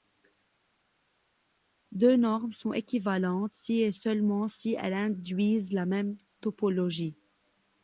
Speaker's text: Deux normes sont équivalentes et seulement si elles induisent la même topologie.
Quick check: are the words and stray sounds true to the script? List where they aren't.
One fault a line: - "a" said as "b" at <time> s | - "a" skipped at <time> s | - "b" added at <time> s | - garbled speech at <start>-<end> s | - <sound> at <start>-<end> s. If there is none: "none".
- "si" added at 3.5 s